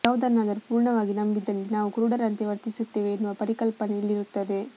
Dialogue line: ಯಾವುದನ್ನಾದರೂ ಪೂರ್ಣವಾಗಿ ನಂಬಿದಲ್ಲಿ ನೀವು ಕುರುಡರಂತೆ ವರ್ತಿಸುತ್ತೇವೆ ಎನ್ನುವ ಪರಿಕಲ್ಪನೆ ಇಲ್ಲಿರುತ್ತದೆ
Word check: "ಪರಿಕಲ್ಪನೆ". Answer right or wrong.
right